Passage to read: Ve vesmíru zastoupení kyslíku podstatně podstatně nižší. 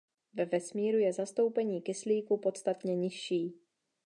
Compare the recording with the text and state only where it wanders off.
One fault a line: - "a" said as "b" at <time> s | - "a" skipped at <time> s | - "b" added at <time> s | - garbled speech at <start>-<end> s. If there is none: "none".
- "je" added at 1.0 s
- "podstatně" skipped at 3.0 s